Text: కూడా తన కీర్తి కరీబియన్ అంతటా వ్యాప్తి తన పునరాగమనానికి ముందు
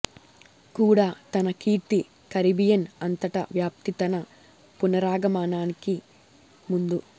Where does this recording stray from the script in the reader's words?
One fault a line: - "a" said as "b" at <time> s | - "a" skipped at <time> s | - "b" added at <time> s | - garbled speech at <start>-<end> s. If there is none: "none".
none